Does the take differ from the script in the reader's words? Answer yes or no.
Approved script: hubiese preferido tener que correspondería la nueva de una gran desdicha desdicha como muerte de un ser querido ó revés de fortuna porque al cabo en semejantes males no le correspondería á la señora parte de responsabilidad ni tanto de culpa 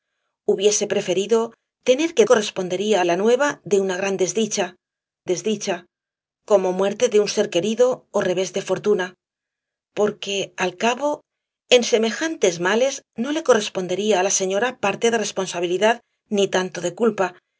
no